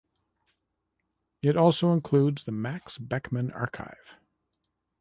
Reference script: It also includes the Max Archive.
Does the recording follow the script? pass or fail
fail